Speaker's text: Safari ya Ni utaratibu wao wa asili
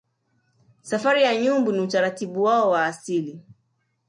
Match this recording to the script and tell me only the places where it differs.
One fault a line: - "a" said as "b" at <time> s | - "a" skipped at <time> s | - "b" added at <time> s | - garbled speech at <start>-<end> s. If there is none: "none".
- "Nyumbu" added at 1.4 s